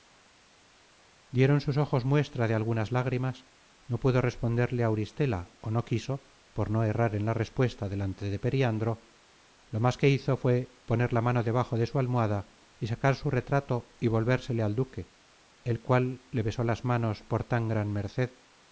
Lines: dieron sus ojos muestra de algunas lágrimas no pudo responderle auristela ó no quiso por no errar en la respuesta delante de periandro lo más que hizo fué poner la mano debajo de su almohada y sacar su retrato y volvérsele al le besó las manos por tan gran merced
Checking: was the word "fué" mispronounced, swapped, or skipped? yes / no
no